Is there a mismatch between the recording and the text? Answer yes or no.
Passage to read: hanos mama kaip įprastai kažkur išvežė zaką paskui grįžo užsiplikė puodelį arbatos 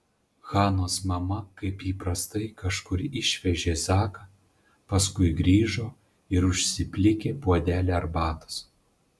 yes